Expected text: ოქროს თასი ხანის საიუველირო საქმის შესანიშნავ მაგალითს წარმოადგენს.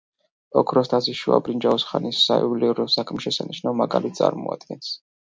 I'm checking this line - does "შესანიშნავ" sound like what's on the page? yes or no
yes